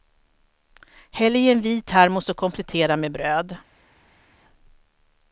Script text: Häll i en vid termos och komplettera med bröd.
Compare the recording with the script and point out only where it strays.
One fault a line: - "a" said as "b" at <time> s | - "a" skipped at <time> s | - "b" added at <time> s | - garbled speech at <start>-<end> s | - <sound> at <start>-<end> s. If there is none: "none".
none